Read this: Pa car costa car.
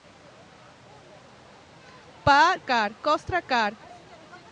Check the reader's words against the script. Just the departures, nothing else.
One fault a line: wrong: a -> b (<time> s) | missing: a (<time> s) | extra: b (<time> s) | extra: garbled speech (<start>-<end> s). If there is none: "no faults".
no faults